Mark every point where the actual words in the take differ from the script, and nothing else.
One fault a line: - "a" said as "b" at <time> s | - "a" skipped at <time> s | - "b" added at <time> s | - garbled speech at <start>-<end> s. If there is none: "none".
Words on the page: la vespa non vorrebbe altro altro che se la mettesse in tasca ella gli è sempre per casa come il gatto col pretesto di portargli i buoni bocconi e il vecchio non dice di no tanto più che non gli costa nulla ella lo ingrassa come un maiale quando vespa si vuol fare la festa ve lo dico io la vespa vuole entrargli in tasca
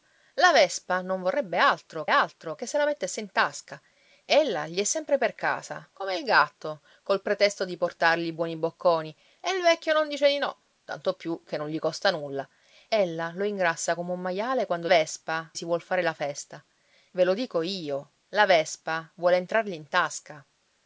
none